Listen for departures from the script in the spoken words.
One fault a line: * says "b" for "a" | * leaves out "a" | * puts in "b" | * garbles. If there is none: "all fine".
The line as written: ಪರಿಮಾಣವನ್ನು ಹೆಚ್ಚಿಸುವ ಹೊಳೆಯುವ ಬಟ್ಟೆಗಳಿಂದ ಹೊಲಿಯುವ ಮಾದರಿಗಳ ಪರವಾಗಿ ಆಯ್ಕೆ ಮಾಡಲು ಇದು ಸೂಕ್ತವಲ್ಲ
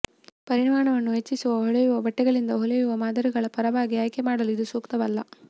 all fine